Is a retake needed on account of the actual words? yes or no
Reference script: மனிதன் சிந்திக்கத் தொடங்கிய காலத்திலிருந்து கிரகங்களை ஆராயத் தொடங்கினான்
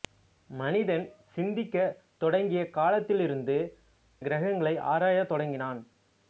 no